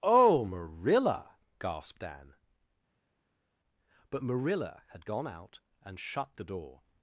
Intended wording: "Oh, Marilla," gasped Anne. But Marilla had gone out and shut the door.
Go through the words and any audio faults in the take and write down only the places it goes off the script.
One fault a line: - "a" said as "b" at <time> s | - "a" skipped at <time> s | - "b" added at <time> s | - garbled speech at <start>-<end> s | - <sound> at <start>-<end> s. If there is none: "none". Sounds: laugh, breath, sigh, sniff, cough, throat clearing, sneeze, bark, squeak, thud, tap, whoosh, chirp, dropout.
none